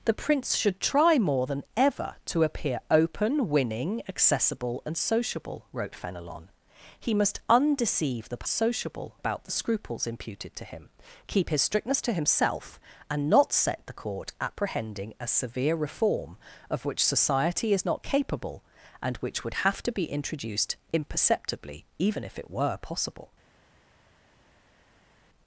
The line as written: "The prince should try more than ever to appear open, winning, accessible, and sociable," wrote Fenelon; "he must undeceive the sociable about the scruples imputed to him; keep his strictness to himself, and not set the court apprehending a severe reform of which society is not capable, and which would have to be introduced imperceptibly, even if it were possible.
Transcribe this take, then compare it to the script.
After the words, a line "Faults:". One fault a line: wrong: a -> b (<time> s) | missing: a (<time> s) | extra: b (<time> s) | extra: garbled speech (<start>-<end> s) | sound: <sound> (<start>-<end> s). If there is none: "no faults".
"The prince should try more than ever to appear open, winning, accessible, and sociable," wrote Fenelon; "he must undeceive the sociable about the scruples imputed to him; keep his strictness to himself, and not set the court apprehending a severe reform of which society is not capable, and which would have to be introduced imperceptibly, even if it were possible.
Faults:
no faults